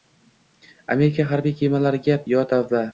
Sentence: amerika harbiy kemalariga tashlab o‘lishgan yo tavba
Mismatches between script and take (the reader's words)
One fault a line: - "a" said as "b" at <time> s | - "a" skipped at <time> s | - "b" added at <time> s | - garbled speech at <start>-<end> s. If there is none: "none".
- "tashlab o‘lishgan" skipped at 2.2 s